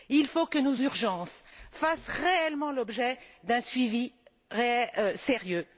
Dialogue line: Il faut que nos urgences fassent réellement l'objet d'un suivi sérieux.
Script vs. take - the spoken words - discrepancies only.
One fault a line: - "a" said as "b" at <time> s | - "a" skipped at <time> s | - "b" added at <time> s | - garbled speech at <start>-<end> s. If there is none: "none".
none